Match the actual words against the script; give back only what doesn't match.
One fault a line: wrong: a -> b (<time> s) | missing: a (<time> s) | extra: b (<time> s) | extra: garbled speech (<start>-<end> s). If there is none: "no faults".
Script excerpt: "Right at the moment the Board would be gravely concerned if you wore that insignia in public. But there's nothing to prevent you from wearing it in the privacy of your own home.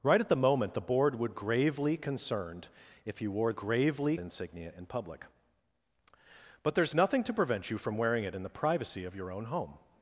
missing: be (1.3 s)
wrong: that -> gravely (3.5 s)